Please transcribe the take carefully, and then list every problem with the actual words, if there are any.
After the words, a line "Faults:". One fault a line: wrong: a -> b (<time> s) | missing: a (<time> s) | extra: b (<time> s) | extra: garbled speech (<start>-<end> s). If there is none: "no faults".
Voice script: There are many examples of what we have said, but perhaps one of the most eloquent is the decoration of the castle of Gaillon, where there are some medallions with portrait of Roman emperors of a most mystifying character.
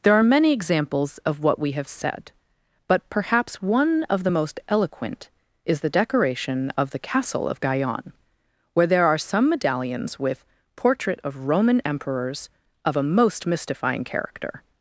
There are many examples of what we have said, but perhaps one of the most eloquent is the decoration of the castle of Gaillon, where there are some medallions with portrait of Roman emperors of a most mystifying character.
Faults:
no faults